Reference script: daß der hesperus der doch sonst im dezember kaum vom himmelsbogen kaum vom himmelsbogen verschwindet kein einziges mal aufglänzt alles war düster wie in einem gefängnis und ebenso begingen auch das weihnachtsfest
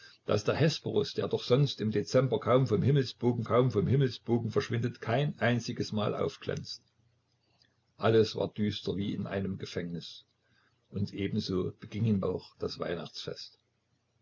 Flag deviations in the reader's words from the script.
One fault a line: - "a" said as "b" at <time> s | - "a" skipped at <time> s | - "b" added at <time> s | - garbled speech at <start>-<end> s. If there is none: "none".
none